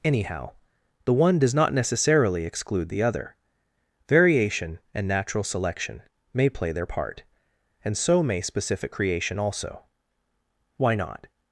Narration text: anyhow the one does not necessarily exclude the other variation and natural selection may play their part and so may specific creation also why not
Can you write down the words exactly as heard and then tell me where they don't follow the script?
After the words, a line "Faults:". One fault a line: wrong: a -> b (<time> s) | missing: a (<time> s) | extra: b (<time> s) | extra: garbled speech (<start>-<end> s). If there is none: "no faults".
anyhow the one does not necessarily exclude the other variation and natural selection may play their part and so may specific creation also why not
Faults:
no faults